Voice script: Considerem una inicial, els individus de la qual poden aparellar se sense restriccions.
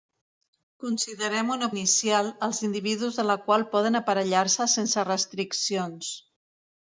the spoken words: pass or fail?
pass